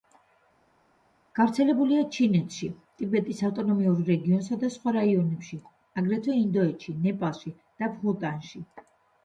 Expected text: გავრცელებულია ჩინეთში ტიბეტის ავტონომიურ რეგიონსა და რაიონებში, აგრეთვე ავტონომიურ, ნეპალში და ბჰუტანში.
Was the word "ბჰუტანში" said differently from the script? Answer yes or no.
no